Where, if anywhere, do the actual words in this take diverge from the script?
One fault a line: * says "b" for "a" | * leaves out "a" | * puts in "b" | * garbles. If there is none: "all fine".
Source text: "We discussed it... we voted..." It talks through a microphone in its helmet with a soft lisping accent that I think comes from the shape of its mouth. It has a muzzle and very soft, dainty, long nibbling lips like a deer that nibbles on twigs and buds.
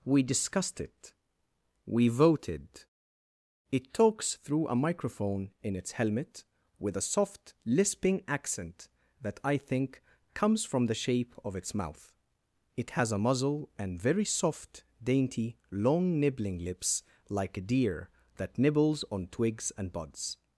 all fine